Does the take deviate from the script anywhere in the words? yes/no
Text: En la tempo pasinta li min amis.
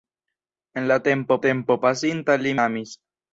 yes